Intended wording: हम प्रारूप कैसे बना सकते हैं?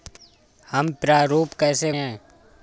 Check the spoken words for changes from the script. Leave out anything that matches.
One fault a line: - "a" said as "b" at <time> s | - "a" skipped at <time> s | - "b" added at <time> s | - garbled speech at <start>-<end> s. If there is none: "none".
- "बना सकते" skipped at 1.9 s